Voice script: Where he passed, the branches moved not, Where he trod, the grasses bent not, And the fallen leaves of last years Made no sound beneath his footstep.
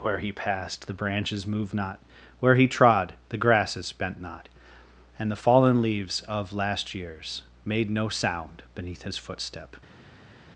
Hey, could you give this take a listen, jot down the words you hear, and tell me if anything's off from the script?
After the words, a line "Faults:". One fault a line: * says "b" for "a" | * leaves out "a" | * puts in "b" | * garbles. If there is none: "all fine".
Where he passed, the branches moved not, Where he trod, the grasses bent not, And the fallen leaves of last years Made no sound beneath his footstep.
Faults:
all fine